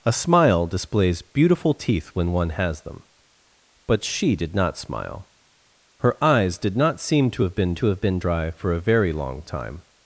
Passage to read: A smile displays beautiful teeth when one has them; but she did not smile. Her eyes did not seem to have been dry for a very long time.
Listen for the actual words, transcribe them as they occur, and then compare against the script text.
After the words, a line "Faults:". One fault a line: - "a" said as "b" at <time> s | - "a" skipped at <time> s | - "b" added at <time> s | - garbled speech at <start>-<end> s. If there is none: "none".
A smile displays beautiful teeth when one has them; but she did not smile. Her eyes did not seem to have been to have been dry for a very long time.
Faults:
- "to have been" added at 7.7 s